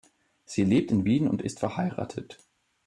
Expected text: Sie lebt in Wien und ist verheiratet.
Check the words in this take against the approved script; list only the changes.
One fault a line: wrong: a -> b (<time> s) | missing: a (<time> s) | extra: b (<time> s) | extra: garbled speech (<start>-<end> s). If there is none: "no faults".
no faults